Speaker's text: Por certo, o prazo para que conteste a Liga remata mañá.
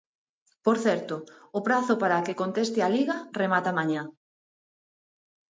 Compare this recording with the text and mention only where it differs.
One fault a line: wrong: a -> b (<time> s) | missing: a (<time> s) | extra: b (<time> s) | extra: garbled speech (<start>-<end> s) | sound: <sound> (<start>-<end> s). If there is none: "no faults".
no faults